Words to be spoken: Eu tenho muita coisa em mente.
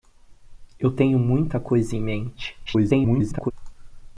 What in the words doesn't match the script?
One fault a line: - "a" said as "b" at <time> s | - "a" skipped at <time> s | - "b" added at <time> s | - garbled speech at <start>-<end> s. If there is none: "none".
- garbled speech at 2.7-3.5 s